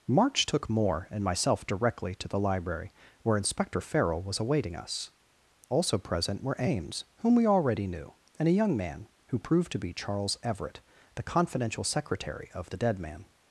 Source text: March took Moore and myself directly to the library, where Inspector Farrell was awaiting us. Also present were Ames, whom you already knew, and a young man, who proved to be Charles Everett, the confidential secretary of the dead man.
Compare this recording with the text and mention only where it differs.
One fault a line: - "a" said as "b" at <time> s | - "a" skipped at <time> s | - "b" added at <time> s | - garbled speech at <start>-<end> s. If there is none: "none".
- "you" said as "we" at 7.3 s